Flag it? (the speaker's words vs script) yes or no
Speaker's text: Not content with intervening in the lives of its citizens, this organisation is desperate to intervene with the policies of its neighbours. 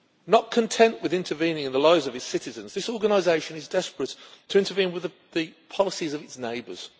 no